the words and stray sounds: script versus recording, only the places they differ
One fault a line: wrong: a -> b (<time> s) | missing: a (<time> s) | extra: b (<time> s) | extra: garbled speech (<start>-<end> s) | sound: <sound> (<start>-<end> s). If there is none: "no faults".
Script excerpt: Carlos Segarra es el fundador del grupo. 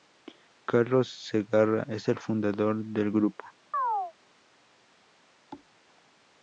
sound: chirp (3.7-4.1 s)
sound: thud (5.5-5.7 s)